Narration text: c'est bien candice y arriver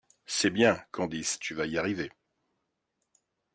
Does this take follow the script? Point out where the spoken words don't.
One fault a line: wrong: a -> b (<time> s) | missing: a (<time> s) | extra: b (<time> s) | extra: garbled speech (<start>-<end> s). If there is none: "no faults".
extra: tu vas (1.4 s)